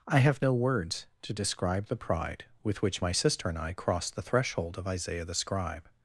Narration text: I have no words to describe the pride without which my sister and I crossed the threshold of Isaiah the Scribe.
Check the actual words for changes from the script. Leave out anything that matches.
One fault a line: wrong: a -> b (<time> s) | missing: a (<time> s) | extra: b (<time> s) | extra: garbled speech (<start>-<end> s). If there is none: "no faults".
wrong: without -> with (2.6 s)